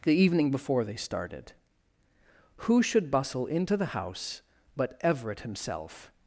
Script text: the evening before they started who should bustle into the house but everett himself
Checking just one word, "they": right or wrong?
right